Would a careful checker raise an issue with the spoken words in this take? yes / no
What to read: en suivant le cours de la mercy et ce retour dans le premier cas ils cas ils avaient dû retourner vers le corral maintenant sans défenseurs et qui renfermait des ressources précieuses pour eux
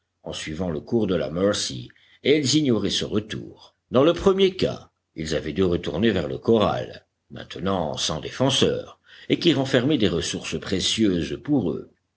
yes